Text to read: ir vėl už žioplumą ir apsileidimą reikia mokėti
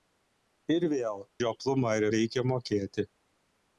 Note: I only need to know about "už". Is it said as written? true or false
false